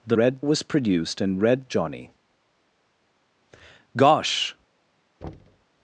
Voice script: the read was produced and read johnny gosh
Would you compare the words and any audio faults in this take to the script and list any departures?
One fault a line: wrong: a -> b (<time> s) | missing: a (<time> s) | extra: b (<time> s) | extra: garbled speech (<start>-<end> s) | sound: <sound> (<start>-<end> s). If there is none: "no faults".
sound: thud (5.2-5.7 s)